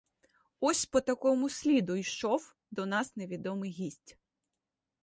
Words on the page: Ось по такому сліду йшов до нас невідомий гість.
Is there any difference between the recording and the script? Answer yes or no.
no